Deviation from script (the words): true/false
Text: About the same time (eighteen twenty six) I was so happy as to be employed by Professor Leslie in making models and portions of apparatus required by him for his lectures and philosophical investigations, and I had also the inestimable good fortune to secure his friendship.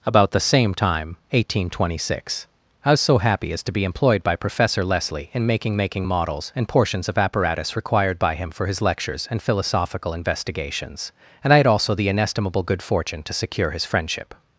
true